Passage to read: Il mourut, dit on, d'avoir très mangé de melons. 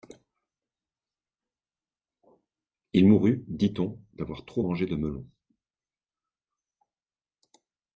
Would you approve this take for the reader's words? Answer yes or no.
no